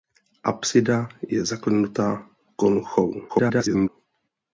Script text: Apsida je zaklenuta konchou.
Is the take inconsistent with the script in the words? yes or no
yes